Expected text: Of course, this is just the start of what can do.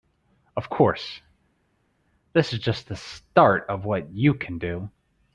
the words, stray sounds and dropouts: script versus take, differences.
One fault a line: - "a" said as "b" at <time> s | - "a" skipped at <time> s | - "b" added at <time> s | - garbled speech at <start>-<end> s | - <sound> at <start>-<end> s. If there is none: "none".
- "you" added at 4.1 s